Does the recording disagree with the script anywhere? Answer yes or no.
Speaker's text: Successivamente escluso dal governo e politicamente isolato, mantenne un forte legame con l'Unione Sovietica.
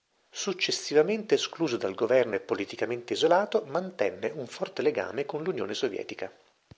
no